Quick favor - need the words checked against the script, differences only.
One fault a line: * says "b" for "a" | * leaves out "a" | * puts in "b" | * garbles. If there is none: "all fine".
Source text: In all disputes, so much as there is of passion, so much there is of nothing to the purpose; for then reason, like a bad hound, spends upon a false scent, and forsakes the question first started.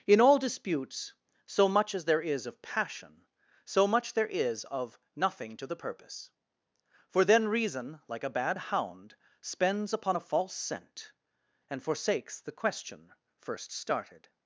all fine